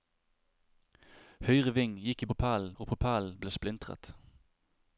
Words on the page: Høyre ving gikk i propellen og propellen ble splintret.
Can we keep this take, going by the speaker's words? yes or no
yes